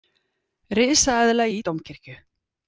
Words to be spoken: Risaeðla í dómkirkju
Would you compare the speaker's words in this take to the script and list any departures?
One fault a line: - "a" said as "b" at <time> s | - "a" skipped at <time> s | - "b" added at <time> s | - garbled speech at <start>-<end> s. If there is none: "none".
none